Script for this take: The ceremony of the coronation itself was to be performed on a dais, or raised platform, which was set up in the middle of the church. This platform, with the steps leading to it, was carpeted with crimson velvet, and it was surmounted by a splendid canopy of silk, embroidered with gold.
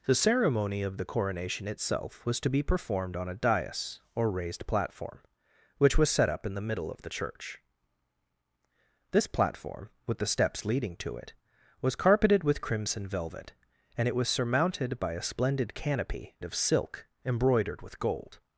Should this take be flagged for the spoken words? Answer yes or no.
no